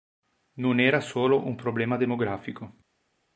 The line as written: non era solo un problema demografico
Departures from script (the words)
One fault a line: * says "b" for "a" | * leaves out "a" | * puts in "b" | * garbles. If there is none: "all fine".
all fine